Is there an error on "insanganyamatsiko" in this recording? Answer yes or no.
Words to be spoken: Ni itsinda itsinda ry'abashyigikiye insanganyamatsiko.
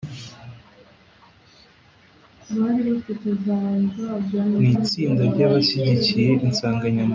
no